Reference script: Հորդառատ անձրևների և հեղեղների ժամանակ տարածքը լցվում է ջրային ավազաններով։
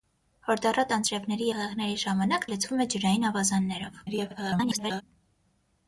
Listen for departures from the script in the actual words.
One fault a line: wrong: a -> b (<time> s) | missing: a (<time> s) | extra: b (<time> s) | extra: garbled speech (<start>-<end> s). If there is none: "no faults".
missing: և (1.5 s)
missing: տարածքը (2.5 s)
extra: garbled speech (4.1-5.0 s)